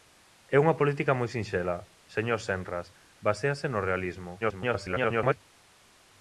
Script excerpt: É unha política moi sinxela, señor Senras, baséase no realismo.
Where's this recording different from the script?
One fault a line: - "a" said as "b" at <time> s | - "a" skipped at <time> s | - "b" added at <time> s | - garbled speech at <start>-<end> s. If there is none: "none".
- garbled speech at 4.4-5.4 s